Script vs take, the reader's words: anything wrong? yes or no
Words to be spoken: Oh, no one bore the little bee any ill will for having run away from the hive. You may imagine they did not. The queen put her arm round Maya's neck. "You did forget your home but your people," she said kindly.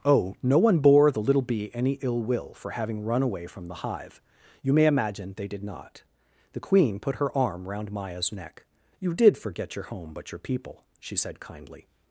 no